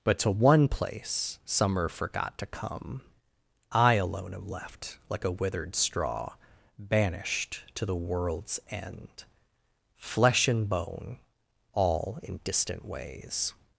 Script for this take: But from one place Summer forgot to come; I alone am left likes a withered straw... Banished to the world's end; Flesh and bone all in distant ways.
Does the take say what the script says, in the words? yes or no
no